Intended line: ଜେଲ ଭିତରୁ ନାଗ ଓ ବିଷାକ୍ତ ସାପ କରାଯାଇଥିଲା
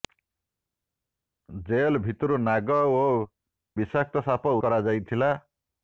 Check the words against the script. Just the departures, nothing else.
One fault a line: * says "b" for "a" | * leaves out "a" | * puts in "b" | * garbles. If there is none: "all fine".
all fine